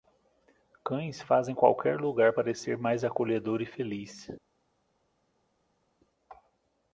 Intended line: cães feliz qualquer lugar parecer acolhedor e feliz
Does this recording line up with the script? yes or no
no